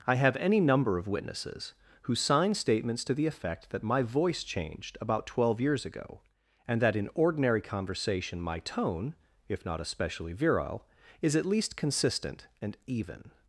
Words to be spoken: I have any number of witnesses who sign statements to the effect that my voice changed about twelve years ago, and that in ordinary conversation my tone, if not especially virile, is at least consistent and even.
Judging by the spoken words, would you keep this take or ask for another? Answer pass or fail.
pass